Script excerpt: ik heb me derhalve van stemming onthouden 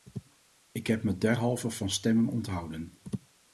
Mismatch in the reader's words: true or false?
false